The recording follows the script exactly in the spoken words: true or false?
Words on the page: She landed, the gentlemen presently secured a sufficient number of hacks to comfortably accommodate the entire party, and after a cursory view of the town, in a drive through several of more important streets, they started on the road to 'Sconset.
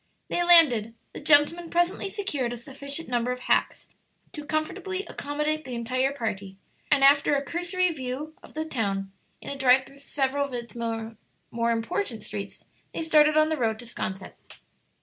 false